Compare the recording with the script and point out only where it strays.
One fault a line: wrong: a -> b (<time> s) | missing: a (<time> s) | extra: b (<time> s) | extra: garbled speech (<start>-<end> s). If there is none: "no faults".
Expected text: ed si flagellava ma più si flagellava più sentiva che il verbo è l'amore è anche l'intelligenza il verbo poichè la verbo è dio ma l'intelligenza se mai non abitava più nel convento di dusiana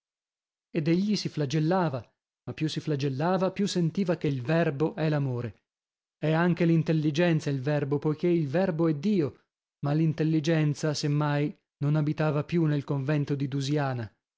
extra: egli (0.9 s)
wrong: la -> il (8.3 s)